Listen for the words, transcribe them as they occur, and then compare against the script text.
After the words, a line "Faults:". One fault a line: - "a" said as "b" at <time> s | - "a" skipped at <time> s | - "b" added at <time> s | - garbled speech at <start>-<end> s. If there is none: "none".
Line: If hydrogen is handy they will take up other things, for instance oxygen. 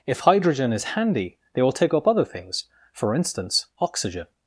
If hydrogen is handy they will take up other things, for instance oxygen.
Faults:
none